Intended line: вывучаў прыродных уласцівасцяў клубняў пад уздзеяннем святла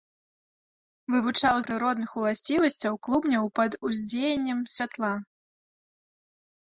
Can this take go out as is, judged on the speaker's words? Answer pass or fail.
pass